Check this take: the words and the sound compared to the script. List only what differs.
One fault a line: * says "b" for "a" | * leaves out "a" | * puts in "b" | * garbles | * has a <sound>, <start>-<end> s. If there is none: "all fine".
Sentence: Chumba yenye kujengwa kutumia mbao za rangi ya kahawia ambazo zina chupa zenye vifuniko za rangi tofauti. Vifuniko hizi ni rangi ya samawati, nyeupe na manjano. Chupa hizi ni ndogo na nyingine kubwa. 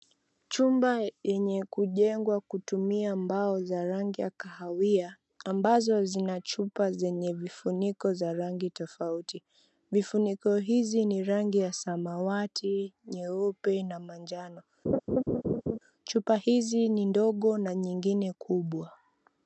* has a laugh, 14.8-15.8 s